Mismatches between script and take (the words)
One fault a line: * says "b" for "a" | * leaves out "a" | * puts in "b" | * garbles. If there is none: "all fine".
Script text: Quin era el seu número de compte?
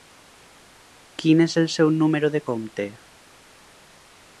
* says "és" for "era"